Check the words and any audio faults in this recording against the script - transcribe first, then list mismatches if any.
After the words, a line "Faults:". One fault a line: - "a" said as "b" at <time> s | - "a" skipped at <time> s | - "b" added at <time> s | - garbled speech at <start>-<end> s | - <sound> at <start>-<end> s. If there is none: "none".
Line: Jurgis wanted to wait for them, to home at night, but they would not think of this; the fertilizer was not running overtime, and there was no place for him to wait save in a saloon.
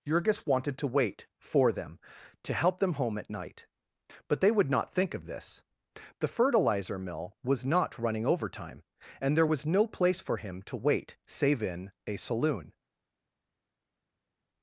Jurgis wanted to wait for them, to help them home at night, but they would not think of this; the fertilizer mill was not running overtime, and there was no place for him to wait save in a saloon.
Faults:
- "help them" added at 2.5 s
- "mill" added at 7.0 s